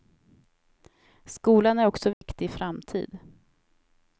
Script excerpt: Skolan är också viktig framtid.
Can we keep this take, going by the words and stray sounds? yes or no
no